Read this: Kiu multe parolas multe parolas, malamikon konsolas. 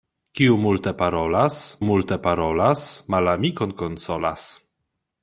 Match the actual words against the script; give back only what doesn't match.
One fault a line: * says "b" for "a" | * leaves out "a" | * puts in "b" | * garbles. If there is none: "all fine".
all fine